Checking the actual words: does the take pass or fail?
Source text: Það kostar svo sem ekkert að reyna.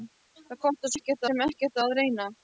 fail